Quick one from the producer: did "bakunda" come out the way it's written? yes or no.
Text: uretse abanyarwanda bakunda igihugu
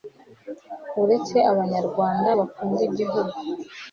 yes